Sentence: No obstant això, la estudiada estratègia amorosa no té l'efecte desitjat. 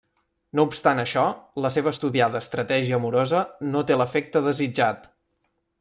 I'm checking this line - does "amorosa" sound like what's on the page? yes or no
yes